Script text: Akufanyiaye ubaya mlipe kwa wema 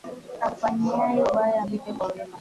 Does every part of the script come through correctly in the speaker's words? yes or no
yes